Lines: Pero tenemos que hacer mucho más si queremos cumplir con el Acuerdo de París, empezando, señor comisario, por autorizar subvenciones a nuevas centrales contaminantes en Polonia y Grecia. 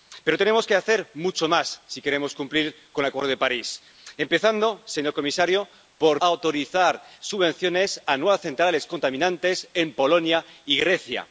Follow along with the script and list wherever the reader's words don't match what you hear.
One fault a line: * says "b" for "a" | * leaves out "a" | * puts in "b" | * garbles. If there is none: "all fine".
all fine